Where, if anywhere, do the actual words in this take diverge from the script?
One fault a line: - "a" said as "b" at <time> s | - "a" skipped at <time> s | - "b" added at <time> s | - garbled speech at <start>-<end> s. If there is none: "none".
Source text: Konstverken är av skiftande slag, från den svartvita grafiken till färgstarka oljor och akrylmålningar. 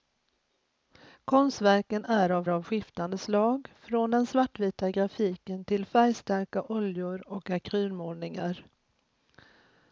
- "av" added at 2.5 s